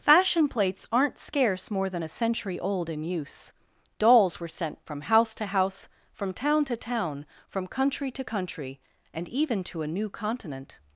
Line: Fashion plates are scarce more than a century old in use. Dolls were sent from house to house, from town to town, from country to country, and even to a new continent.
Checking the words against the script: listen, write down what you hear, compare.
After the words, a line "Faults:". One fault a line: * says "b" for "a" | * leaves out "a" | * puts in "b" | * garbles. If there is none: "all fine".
Fashion plates aren't scarce more than a century old in use. Dolls were sent from house to house, from town to town, from country to country, and even to a new continent.
Faults:
* says "aren't" for "are"